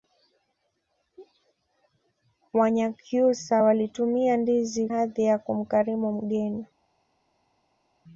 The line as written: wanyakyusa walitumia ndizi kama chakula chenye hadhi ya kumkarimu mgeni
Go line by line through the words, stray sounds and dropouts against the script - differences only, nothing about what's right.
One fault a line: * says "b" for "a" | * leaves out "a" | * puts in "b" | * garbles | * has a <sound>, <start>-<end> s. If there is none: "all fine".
* leaves out "kama chakula chenye"